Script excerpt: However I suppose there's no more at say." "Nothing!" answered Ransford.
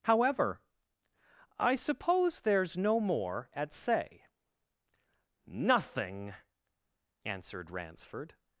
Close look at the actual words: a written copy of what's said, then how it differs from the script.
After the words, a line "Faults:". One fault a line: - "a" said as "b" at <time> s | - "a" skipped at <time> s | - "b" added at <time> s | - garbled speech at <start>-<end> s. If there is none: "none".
However I suppose there's no more at say." "Nothing!" answered Ransford.
Faults:
none